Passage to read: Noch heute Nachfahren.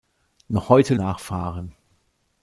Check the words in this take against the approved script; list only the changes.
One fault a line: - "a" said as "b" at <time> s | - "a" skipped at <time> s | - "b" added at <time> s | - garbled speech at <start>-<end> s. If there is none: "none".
none